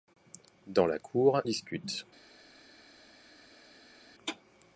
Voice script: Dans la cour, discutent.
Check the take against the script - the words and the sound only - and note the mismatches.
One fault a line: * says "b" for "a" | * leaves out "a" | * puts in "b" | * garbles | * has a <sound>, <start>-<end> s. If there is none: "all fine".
all fine